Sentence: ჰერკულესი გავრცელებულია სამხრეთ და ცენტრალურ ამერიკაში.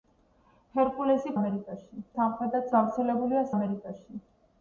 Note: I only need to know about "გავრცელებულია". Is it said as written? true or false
false